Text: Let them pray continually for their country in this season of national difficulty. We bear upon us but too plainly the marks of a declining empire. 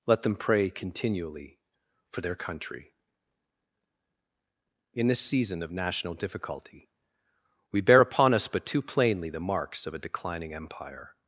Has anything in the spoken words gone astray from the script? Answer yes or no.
no